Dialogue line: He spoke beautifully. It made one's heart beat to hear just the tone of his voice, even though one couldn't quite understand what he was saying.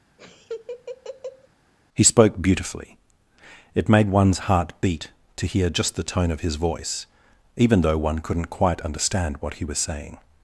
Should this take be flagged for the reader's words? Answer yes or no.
no